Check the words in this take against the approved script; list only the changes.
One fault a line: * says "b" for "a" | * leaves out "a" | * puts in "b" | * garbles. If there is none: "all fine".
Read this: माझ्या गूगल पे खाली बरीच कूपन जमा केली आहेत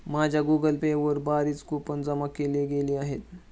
* says "वर" for "खाली"
* puts in "गेली"